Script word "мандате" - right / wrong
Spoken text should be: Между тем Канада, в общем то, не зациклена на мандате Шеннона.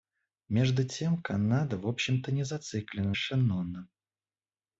wrong